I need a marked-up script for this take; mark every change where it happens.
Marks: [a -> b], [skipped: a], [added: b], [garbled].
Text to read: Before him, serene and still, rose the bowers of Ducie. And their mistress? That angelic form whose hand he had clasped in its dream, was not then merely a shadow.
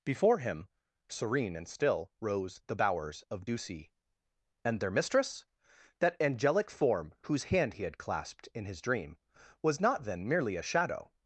Before him, serene and still, rose the bowers of Ducie. And their mistress? That angelic form whose hand he had clasped in [its -> his] dream, was not then merely a shadow.